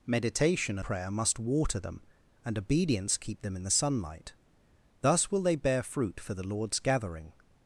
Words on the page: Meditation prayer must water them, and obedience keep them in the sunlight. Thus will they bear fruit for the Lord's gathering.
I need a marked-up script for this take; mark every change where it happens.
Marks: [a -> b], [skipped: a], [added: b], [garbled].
Meditation prayer must water them, and obedience keep them in the sunlight. Thus will they bear fruit for the Lord's gathering.